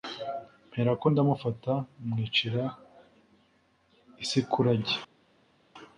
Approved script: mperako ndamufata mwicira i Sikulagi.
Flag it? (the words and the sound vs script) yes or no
no